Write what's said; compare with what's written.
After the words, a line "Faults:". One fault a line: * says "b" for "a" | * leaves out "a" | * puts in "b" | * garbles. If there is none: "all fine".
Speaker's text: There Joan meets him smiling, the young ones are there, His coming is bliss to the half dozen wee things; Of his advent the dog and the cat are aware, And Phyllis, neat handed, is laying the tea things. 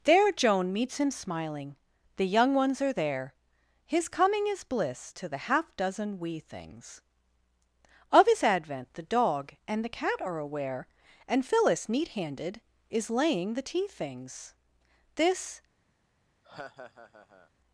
There Joan meets him smiling, the young ones are there, His coming is bliss to the half dozen wee things; Of his advent the dog and the cat are aware, And Phyllis, neat handed, is laying the tea things. This
Faults:
* puts in "This"